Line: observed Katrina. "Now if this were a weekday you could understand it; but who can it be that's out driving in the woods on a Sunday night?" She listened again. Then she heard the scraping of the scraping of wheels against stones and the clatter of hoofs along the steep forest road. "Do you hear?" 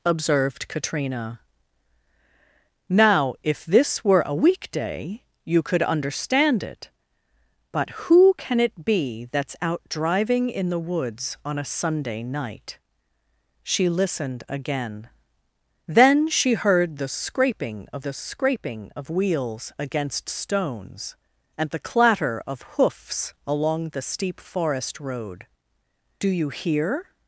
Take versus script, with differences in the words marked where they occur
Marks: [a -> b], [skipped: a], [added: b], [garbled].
observed Katrina. "Now if this were a weekday you could understand it; but who can it be that's out driving in the woods on a Sunday night?" She listened again. Then she heard the scraping of the scraping of wheels against stones and the clatter of hoofs along the steep forest road. "Do you hear?"